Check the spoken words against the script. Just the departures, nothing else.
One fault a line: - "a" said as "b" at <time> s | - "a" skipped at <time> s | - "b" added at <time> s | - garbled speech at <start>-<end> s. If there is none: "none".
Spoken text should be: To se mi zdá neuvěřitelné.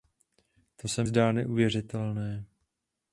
- "mi" skipped at 1.0 s